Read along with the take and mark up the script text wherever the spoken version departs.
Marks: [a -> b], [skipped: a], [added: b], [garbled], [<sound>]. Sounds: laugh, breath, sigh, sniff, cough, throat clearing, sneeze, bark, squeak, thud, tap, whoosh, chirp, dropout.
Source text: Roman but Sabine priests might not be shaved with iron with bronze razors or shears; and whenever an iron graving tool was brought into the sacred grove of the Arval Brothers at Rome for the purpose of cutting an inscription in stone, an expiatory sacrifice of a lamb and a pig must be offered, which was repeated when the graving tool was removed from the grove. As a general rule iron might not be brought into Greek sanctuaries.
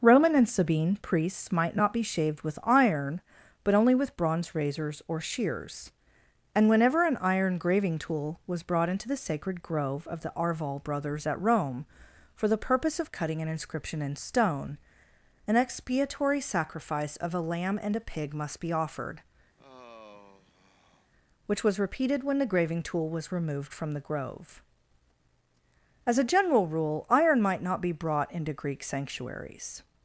Roman [but -> and] Sabine priests might not be shaved with iron [added: but only] with bronze razors or shears; and whenever an iron graving tool was brought into the sacred grove of the Arval Brothers at Rome for the purpose of cutting an inscription in stone, an expiatory sacrifice of a lamb and a pig must be offered, [sigh] which was repeated when the graving tool was removed from the grove. As a general rule iron might not be brought into Greek sanctuaries.